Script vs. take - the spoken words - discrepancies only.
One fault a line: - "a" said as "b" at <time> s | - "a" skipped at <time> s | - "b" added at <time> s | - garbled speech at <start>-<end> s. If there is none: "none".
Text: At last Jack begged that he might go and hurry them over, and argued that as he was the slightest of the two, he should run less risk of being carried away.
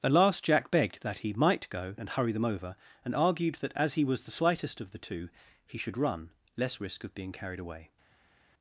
none